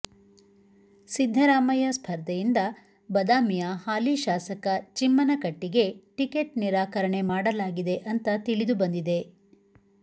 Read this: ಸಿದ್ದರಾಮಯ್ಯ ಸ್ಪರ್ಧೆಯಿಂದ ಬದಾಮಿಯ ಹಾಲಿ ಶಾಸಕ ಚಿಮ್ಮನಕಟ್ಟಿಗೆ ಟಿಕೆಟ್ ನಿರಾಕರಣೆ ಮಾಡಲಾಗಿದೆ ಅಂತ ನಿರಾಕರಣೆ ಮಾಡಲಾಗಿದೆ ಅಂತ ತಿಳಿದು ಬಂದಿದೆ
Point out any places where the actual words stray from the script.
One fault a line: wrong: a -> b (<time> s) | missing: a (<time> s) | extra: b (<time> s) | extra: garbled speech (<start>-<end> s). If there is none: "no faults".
missing: ನಿರಾಕರಣೆ ಮಾಡಲಾಗಿದೆ ಅಂತ (8.3 s)